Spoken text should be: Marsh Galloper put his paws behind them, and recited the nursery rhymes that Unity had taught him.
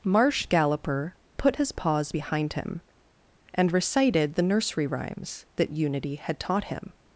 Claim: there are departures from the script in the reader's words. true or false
true